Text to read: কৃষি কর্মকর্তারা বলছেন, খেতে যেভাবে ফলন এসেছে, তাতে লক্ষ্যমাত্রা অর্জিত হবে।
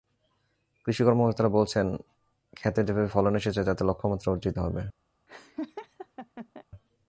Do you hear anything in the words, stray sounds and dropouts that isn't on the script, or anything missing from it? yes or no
yes